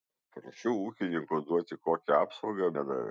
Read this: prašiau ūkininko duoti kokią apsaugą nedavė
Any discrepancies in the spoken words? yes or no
no